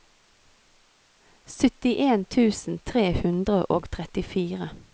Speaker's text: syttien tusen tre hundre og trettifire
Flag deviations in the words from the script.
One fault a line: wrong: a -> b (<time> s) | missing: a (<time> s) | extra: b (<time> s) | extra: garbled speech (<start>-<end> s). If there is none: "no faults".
no faults